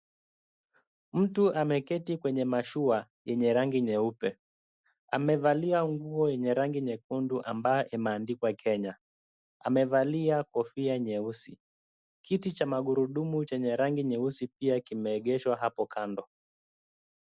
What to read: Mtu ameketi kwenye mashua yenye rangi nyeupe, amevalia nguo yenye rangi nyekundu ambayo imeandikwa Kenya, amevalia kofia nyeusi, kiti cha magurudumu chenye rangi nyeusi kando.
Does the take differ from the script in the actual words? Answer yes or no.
yes